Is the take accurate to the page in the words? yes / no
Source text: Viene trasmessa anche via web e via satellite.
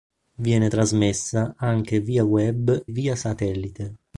no